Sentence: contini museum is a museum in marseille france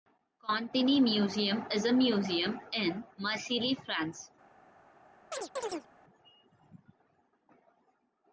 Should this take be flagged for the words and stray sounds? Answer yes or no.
yes